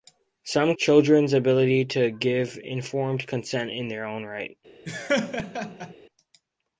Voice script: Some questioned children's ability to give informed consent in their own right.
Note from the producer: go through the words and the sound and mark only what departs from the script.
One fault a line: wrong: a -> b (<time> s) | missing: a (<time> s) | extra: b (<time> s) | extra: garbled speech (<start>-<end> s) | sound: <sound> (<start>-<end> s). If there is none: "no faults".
missing: questioned (0.7 s)
sound: laugh (4.9-5.9 s)